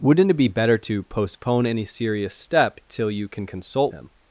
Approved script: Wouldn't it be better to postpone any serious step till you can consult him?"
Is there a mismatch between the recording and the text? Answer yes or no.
no